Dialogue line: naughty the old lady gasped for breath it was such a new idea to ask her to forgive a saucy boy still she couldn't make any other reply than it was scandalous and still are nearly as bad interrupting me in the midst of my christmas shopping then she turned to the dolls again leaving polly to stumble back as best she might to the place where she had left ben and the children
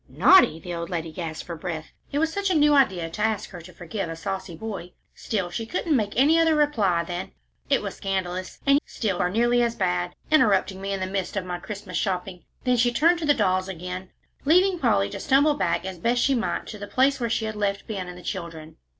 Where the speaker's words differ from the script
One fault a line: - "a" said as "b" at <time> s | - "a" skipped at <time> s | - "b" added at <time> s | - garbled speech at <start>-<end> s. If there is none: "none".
none